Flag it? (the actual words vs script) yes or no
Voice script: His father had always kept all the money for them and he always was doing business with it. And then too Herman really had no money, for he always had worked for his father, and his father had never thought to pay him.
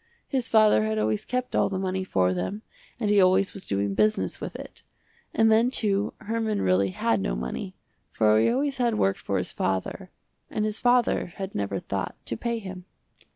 no